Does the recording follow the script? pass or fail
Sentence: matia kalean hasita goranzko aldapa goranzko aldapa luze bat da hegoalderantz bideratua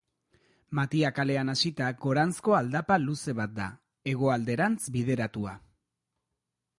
fail